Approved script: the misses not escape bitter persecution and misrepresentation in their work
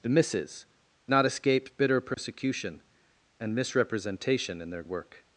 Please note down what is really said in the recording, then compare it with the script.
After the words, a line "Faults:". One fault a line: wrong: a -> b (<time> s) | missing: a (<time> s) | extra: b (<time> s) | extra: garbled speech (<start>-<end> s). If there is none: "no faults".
the misses not escape bitter persecution and misrepresentation in their work
Faults:
no faults